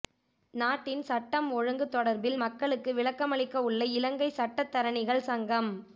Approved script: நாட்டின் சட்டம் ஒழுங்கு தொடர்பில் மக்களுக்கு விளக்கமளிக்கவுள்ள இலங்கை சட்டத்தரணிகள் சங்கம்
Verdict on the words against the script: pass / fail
pass